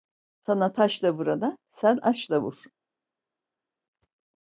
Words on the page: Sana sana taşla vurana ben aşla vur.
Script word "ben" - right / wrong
wrong